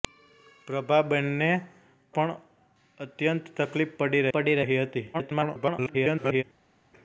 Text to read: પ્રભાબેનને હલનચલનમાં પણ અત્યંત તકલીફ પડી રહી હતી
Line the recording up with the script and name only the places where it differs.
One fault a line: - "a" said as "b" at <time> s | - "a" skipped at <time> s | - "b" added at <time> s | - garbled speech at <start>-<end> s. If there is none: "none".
- "હલનચલનમાં" skipped at 1.5 s
- "પડી" added at 4.3 s
- garbled speech at 5.1-6.4 s